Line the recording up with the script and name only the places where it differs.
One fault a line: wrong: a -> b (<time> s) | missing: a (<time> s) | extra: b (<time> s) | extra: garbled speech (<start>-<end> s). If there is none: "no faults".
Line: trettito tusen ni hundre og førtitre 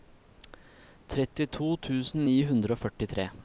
no faults